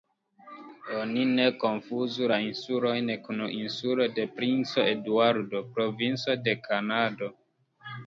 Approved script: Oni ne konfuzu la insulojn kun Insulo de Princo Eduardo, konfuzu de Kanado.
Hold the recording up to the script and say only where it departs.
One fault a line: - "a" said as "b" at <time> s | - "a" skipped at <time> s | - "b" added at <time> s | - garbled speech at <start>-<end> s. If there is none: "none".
- "konfuzu" said as "provinco" at 5.8 s